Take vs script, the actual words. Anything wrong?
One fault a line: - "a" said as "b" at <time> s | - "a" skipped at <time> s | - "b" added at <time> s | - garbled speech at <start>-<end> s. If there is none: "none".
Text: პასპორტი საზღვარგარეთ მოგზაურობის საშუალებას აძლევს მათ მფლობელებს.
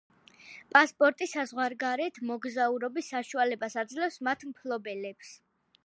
none